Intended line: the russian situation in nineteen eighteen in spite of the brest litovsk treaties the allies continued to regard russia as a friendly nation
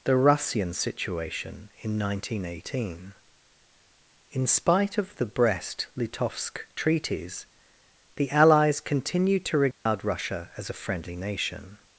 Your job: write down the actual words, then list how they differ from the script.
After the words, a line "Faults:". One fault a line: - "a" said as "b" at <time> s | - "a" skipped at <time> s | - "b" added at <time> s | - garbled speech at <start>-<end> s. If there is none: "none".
the russian situation in nineteen eighteen in spite of the brest litovsk treaties the allies continued to regard russia as a friendly nation
Faults:
none